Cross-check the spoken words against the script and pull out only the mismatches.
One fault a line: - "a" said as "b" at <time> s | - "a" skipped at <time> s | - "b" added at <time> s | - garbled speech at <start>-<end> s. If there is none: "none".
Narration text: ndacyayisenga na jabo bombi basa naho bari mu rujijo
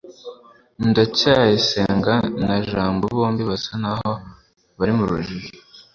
none